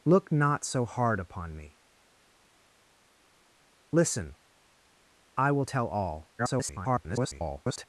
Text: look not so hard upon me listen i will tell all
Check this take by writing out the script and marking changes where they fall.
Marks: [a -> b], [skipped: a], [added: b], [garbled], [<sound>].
look not so hard upon me listen i will tell all [garbled]